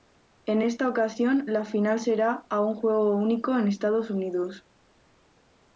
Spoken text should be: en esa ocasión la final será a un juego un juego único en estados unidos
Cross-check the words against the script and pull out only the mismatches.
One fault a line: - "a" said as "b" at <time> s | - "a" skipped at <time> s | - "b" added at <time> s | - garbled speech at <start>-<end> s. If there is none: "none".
- "esa" said as "esta" at 0.6 s
- "un juego" skipped at 3.2 s